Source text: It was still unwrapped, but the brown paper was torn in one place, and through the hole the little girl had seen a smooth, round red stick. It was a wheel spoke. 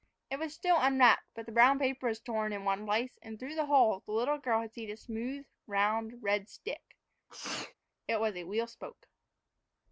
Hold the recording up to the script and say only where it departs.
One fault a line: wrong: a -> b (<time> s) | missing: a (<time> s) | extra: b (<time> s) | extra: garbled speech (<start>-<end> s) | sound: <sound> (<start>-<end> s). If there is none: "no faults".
sound: sneeze (7.3-7.7 s)